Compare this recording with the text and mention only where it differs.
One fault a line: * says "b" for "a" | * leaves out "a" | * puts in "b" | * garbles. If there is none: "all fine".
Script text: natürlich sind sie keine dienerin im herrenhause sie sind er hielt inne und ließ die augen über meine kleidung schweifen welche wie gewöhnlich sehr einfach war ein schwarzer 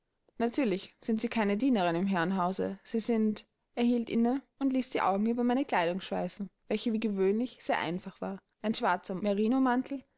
all fine